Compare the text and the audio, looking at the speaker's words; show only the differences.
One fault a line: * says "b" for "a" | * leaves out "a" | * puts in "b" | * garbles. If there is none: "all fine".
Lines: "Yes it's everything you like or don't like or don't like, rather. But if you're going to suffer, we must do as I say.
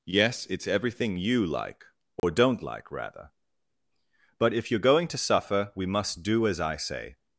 * leaves out "or don't like"